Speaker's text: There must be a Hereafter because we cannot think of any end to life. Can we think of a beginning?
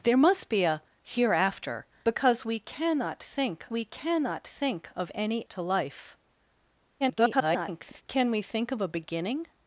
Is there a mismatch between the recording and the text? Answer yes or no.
yes